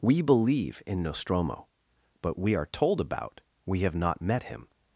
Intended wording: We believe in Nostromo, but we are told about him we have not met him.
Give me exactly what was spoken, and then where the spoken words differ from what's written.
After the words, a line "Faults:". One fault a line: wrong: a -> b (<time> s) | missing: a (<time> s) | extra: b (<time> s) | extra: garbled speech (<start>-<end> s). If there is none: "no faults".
We believe in Nostromo, but we are told about we have not met him.
Faults:
missing: him (3.4 s)